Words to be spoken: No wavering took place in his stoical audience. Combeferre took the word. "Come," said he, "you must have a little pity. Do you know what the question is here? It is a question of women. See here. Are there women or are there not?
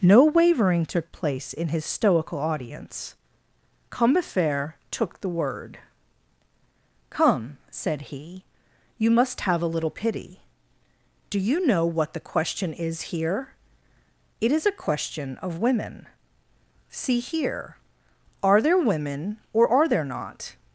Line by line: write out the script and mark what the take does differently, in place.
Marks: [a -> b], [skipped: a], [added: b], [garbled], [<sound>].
No wavering took place in his stoical audience. Combeferre took the word. "Come," said he, "you must have a little pity. Do you know what the question is here? It is a question of women. See here. Are there women or are there not?